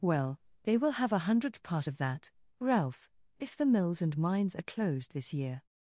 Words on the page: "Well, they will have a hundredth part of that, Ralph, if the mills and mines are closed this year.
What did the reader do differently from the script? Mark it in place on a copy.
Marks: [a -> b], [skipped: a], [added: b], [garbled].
"Well, they will have a hundredth part of that, Ralph, if the mills and mines are closed this year.